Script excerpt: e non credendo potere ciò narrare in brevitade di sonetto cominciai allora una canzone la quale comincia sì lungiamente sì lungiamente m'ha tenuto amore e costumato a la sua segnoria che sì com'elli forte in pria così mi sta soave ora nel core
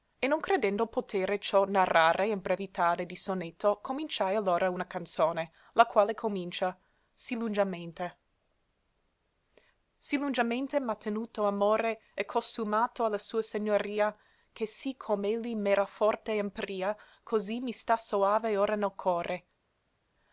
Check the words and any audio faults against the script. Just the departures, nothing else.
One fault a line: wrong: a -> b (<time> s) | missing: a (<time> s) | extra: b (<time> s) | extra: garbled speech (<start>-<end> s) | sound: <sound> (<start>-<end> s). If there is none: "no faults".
extra: m'era (15.5 s)